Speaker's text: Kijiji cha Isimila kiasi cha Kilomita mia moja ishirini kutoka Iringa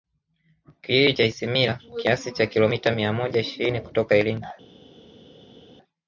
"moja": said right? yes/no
yes